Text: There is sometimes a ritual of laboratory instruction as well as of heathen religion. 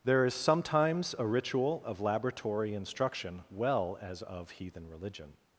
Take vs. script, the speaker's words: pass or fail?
fail